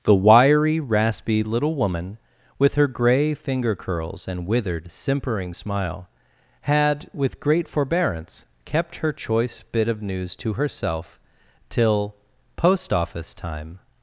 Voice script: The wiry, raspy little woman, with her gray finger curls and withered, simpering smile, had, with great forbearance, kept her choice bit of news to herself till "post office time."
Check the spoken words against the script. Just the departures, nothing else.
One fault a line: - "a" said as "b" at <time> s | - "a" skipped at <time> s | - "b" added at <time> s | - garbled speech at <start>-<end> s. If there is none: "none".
none